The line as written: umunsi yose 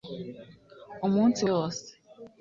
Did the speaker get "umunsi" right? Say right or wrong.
right